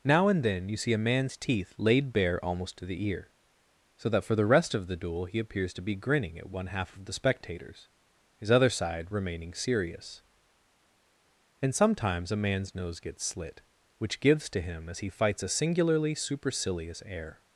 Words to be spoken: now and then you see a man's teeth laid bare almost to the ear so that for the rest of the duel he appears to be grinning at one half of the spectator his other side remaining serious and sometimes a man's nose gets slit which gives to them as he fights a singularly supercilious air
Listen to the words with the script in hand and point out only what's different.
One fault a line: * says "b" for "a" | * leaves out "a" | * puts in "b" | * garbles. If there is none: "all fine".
* says "spectators" for "spectator"
* says "him" for "them"